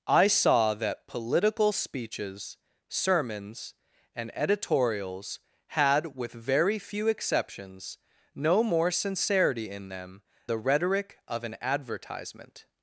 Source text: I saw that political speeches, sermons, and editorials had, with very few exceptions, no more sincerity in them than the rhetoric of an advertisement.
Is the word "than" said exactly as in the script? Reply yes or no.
no